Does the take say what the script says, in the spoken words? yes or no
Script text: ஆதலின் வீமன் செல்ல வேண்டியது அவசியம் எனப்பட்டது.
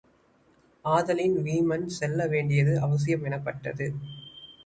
yes